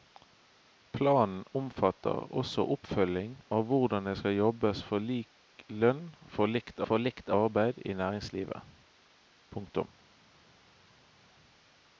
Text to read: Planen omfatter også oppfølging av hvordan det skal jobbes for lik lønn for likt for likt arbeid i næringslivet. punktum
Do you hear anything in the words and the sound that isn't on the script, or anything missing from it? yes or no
no